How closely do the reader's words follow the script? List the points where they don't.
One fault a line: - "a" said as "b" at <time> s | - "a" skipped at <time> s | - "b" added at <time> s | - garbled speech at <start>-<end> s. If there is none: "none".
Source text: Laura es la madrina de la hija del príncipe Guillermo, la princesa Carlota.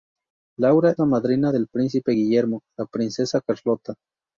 - "es" skipped at 0.9 s
- "de la hija" skipped at 1.5 s